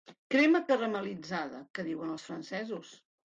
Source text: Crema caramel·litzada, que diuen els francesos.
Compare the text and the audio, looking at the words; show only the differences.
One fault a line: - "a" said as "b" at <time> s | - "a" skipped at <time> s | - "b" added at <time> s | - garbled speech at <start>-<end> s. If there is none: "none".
none